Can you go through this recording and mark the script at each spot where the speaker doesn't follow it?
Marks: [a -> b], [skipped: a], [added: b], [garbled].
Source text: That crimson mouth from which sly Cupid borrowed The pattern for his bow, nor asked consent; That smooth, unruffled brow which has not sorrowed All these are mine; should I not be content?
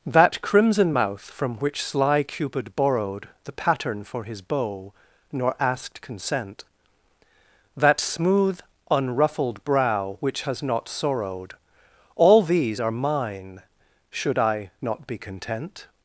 That crimson mouth from which sly Cupid borrowed The pattern for his bow, nor asked consent; That smooth, unruffled brow which has not sorrowed All these are mine; should I not be content?